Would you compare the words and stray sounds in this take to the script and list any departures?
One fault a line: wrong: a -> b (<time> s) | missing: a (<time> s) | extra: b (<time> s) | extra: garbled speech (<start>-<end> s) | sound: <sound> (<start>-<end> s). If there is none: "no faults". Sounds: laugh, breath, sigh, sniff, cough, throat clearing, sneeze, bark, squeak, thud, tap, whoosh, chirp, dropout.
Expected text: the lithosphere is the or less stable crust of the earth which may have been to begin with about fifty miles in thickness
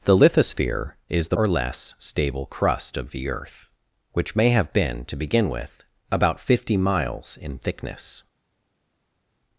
no faults